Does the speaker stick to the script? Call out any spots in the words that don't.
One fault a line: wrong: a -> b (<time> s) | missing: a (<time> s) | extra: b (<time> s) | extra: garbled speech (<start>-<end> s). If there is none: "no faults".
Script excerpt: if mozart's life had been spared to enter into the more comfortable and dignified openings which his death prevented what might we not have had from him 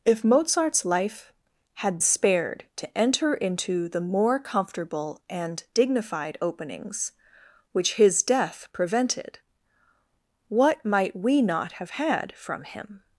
missing: been (2.0 s)